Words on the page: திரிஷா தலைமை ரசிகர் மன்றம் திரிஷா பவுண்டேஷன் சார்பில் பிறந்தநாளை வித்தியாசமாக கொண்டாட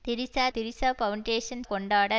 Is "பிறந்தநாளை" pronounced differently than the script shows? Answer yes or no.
yes